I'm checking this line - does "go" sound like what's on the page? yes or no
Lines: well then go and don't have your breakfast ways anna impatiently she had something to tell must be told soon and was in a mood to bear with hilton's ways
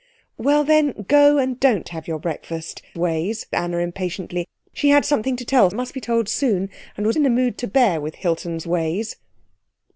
yes